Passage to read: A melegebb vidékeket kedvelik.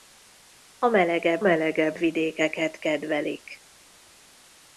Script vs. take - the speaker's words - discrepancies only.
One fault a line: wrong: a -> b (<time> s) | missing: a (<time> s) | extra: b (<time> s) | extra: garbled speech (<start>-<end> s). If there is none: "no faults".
extra: melegebb (1.4 s)